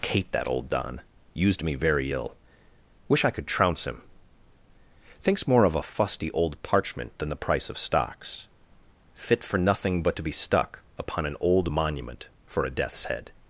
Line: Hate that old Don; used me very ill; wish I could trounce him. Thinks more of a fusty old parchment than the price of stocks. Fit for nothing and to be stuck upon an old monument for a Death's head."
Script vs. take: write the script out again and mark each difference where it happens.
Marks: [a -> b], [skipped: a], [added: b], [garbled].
Hate that old Don; used me very ill; wish I could trounce him. Thinks more of a fusty old parchment than the price of stocks. Fit for nothing [and -> but] to be stuck upon an old monument for a Death's head."